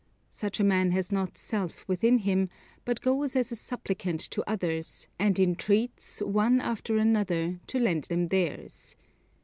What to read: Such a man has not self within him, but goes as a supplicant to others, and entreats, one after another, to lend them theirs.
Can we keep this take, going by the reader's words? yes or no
yes